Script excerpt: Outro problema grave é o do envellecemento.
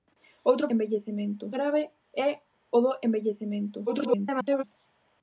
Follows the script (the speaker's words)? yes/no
no